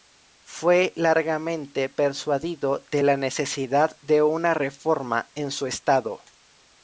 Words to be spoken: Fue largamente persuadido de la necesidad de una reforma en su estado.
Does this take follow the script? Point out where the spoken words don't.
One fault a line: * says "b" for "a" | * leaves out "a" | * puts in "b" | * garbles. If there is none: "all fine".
all fine